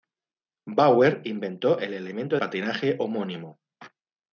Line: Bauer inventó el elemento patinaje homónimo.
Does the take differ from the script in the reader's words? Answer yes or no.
no